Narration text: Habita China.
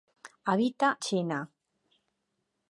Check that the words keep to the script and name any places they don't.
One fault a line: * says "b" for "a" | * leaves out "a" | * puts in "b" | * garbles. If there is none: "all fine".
all fine